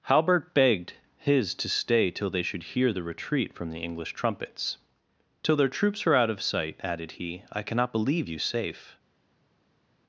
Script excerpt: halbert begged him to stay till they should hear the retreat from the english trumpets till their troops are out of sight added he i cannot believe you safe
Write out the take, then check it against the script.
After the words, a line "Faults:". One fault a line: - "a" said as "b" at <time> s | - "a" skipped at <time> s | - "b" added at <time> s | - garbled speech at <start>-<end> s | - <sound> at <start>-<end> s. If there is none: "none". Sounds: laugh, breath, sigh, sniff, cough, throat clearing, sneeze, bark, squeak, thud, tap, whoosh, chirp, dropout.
halbert begged his to stay till they should hear the retreat from the english trumpets till their troops are out of sight added he i cannot believe you safe
Faults:
- "him" said as "his" at 1.2 s